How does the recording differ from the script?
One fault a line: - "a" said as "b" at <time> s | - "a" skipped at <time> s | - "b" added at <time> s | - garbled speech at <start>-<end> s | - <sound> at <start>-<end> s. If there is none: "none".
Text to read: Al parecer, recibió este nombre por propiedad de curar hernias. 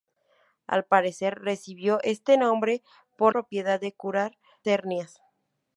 none